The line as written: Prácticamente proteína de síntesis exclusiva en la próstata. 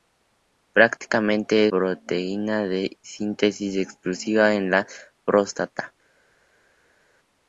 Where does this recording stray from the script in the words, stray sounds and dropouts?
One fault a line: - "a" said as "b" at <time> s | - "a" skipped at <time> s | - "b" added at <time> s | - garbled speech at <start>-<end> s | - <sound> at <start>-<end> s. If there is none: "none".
none